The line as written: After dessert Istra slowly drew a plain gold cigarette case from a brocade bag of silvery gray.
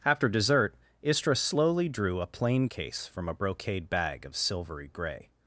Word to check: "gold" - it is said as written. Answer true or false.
false